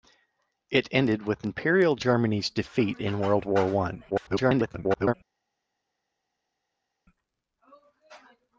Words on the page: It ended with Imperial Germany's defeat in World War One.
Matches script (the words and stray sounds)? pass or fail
fail